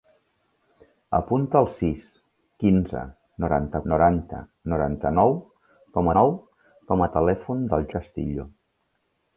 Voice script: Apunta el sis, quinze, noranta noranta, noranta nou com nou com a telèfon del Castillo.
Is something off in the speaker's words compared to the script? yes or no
no